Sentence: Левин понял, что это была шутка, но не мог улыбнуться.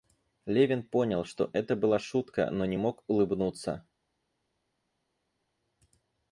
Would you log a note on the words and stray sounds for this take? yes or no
no